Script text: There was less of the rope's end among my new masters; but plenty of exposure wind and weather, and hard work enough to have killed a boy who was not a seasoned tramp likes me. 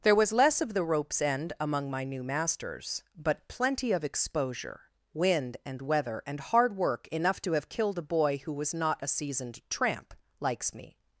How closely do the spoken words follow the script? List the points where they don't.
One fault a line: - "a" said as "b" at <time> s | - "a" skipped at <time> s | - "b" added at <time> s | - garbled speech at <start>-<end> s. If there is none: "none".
none